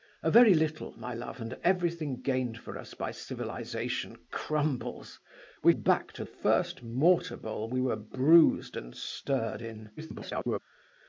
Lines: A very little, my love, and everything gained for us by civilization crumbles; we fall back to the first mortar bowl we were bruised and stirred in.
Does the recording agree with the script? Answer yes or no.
no